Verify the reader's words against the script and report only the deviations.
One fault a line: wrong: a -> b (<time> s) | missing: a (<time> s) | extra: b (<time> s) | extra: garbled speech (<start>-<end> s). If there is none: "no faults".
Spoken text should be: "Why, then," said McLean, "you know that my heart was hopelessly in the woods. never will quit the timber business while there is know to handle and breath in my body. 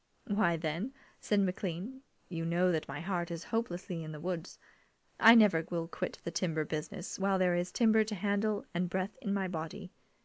wrong: was -> is (3.3 s)
extra: I (5.2 s)
wrong: know -> timber (7.7 s)